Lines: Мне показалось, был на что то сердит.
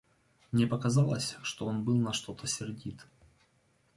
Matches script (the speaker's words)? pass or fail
fail